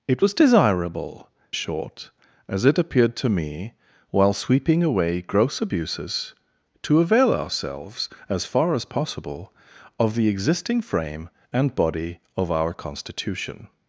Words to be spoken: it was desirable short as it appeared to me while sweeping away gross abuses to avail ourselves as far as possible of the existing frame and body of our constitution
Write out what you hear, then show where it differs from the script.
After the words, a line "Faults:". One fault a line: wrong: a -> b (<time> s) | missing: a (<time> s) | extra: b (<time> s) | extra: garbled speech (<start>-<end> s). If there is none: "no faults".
it was desirable short as it appeared to me while sweeping away gross abuses to avail ourselves as far as possible of the existing frame and body of our constitution
Faults:
no faults